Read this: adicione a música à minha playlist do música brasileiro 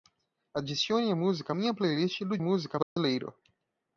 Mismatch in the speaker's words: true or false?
false